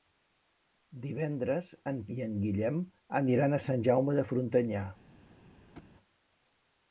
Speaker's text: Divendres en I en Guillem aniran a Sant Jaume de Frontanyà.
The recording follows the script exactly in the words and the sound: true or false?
false